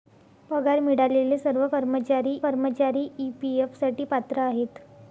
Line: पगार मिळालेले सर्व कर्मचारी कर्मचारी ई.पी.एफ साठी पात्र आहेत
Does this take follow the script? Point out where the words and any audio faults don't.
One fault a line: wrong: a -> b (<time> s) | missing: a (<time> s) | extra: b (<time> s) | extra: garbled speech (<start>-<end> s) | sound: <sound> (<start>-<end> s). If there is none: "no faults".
no faults